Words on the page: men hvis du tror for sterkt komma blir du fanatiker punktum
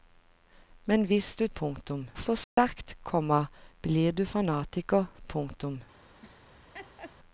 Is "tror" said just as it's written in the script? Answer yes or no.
no